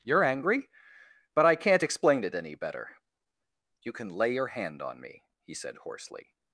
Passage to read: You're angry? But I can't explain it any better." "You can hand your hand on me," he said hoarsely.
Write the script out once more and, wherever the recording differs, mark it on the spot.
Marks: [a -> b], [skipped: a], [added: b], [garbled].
You're angry? But I can't explain it any better." "You can [hand -> lay] your hand on me," he said hoarsely.